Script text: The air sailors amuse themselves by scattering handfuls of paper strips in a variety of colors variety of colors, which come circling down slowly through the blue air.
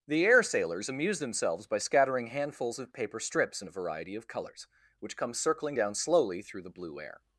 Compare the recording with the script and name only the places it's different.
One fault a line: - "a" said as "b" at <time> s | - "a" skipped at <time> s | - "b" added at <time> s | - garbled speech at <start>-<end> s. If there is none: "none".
- "variety of colors" skipped at 4.7 s